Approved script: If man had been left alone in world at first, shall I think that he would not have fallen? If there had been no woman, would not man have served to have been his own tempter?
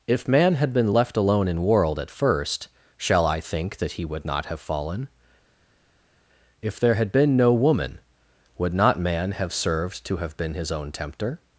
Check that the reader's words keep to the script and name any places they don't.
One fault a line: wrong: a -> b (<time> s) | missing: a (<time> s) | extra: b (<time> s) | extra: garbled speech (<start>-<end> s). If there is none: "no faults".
no faults